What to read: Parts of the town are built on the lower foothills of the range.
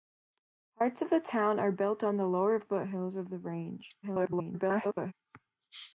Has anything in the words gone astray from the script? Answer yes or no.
yes